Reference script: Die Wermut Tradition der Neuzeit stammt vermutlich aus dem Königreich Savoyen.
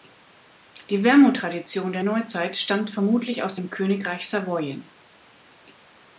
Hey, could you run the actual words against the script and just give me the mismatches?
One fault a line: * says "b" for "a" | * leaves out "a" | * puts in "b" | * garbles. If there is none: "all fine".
all fine